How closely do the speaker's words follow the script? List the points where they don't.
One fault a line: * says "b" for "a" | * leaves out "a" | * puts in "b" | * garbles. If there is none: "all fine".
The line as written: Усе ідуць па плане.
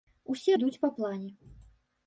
all fine